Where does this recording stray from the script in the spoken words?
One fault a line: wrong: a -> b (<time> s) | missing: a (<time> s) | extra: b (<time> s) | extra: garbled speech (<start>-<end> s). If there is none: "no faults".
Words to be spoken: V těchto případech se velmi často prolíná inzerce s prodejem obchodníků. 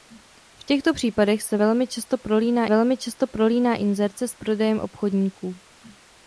extra: velmi často prolíná (2.7 s)